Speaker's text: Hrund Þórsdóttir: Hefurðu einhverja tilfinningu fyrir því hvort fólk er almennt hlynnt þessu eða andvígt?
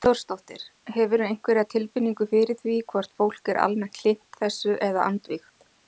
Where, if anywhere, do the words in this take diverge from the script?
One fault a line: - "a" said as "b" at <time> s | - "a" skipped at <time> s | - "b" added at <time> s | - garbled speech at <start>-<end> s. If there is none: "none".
none